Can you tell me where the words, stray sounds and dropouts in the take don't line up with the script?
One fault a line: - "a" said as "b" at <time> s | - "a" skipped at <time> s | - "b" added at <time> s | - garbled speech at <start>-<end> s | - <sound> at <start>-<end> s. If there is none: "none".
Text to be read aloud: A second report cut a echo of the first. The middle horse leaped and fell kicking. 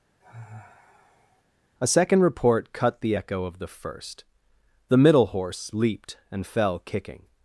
- sigh at 0.2-1.4 s
- "a" said as "the" at 3.0 s